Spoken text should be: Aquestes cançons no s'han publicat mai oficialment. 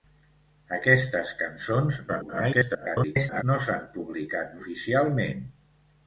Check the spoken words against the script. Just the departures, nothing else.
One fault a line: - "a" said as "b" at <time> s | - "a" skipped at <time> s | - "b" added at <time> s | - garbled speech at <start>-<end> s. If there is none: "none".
- garbled speech at 2.1-3.4 s
- "mai" skipped at 4.6 s